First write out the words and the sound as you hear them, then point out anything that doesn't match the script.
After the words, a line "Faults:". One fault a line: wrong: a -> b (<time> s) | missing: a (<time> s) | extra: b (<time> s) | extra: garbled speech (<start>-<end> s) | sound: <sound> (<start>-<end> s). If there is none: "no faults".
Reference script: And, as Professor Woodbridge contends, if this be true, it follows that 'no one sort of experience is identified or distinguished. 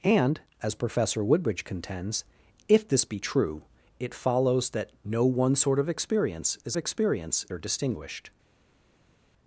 And, as Professor Woodbridge contends, if this be true, it follows that 'no one sort of experience is experience or distinguished.
Faults:
wrong: identified -> experience (6.8 s)